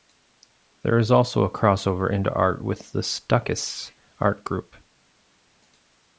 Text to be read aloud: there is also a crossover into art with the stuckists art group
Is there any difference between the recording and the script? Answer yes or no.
no